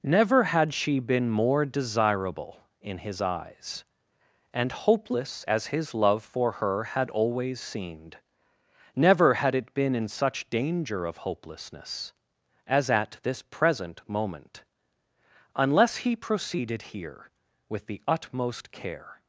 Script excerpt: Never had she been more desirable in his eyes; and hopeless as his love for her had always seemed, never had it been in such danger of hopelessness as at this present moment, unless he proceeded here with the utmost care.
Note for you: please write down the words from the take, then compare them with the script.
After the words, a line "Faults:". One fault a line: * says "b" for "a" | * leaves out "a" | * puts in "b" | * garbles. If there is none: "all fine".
Never had she been more desirable in his eyes; and hopeless as his love for her had always seemed, never had it been in such danger of hopelessness as at this present moment, unless he proceeded here with the utmost care.
Faults:
all fine